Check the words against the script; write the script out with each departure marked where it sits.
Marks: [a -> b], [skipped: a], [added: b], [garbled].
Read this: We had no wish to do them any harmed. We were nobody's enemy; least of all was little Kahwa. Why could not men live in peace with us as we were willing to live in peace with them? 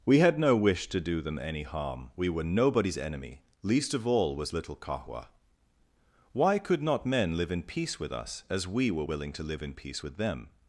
We had no wish to do them any [harmed. -> harm] We were nobody's enemy; least of all was little Kahwa. Why could not men live in peace with us as we were willing to live in peace with them?